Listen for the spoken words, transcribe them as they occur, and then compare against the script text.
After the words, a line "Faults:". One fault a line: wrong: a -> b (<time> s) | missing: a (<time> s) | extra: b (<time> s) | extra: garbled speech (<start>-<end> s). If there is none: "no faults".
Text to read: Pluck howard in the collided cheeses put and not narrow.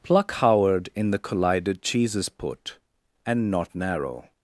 Pluck howard in the collided cheeses put and not narrow.
Faults:
no faults